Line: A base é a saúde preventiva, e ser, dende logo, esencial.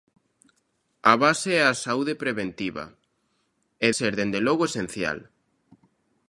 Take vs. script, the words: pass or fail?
pass